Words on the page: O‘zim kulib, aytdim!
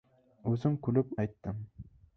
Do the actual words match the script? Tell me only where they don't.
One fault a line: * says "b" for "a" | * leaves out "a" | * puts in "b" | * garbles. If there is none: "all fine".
all fine